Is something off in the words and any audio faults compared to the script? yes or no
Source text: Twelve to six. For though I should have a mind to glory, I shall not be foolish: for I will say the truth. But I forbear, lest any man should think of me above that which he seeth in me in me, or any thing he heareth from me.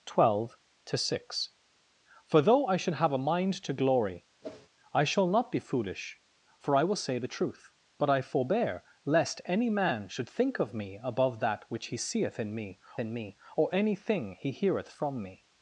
yes